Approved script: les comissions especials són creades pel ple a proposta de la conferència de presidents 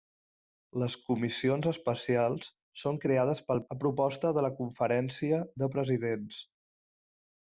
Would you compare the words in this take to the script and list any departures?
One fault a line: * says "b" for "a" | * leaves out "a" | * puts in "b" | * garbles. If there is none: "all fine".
* leaves out "ple"